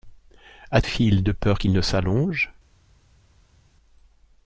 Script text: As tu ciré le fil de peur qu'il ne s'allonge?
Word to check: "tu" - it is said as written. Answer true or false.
false